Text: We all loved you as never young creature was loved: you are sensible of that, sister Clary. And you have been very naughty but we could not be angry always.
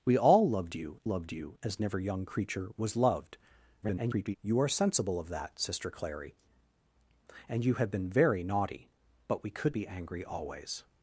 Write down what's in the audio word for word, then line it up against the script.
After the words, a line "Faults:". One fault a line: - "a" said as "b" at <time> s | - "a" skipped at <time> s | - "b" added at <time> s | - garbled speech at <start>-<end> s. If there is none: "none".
We all loved you loved you as never young creature was loved: [garbled] you are sensible of that, sister Clary. And you have been very naughty but we could be angry always.
Faults:
- "loved you" added at 1.1 s
- garbled speech at 3.8-4.4 s
- "not" skipped at 9.8 s